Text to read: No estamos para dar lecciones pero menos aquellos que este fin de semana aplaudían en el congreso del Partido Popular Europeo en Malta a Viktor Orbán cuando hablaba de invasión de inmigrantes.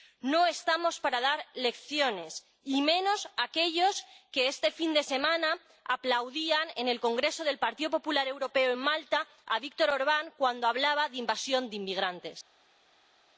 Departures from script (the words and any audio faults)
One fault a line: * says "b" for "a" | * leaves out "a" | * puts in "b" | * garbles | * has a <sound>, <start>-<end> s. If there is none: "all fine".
* says "y" for "pero"